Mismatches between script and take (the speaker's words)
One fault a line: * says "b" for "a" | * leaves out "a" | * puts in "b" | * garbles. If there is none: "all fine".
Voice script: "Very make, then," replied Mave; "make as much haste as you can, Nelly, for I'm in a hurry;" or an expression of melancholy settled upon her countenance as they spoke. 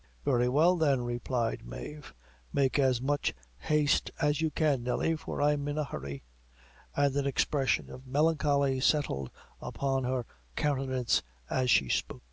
* says "well" for "make"
* says "and" for "or"
* says "she" for "they"